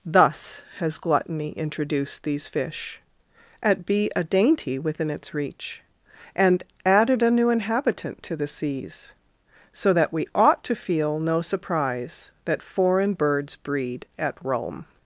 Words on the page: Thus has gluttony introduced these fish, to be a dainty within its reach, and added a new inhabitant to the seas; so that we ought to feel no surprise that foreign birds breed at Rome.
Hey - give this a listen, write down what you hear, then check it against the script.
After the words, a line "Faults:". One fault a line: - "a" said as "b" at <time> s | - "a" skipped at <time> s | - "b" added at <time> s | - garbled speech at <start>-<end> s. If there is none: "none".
Thus has gluttony introduced these fish, at be a dainty within its reach, and added a new inhabitant to the seas; so that we ought to feel no surprise that foreign birds breed at Rome.
Faults:
- "to" said as "at" at 3.6 s